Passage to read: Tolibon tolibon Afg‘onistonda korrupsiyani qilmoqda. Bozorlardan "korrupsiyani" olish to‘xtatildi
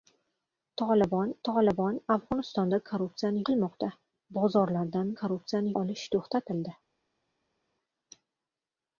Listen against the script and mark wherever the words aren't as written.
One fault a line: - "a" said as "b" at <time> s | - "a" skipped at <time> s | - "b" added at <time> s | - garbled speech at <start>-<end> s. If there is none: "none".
none